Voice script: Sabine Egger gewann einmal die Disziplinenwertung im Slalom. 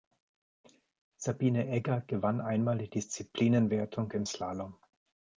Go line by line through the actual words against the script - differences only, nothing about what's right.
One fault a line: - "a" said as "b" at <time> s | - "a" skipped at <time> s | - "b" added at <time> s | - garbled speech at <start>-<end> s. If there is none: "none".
none